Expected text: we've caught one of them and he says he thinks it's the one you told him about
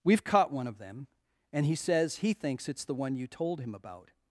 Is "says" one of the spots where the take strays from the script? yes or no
no